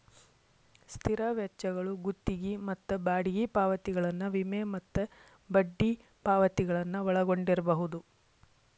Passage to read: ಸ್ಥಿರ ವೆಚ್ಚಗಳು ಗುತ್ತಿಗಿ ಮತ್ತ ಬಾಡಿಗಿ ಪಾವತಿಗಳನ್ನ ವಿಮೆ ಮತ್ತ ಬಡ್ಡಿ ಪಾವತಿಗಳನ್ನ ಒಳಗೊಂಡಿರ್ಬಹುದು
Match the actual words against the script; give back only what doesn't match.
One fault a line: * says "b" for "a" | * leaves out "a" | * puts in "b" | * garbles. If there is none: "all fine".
all fine